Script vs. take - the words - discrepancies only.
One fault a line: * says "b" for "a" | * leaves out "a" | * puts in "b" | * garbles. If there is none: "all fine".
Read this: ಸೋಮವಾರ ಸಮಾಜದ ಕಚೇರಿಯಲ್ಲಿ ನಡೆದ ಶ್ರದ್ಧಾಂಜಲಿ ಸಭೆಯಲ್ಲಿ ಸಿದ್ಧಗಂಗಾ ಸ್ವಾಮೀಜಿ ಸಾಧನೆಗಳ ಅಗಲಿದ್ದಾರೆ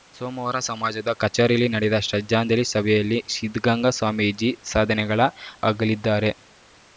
all fine